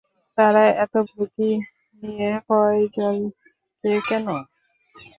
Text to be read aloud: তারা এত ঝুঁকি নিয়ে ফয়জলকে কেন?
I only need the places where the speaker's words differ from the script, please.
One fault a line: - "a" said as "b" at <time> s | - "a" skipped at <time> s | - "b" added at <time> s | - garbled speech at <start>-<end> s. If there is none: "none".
none